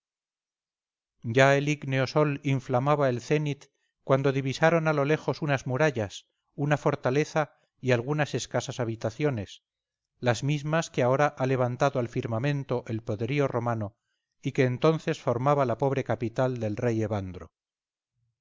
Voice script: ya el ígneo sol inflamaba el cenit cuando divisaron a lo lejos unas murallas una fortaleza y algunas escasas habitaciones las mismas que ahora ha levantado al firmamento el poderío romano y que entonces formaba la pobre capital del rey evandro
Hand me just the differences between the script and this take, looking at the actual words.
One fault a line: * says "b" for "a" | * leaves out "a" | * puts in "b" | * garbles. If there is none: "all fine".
all fine